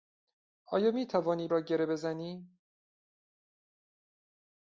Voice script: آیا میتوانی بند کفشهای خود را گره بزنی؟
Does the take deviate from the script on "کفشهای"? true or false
true